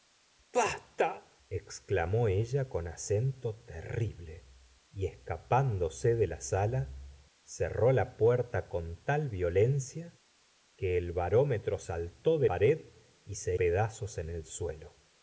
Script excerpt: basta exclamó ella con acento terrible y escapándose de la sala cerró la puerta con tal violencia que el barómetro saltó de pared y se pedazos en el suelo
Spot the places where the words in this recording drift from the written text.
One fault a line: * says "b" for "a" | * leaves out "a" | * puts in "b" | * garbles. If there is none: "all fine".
all fine